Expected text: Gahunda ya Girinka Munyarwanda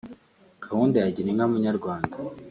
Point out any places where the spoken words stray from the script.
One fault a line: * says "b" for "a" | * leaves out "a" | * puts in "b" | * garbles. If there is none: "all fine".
all fine